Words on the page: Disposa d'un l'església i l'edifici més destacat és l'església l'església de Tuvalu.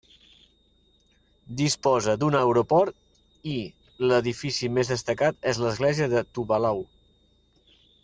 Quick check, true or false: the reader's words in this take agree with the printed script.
false